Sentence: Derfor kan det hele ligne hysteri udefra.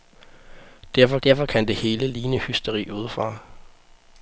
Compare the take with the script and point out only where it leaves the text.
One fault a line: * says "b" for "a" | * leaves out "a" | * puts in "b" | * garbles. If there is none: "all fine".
* puts in "derfor"